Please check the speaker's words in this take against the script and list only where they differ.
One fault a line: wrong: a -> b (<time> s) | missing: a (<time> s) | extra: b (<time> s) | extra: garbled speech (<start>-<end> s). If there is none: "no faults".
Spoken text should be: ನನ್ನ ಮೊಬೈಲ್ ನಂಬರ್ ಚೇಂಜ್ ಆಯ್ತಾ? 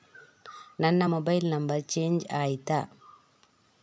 no faults